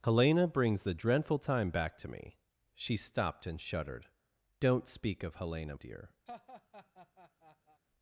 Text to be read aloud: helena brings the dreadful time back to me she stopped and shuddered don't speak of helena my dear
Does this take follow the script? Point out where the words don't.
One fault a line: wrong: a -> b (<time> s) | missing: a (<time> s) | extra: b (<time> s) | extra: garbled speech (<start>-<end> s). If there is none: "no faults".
missing: my (5.8 s)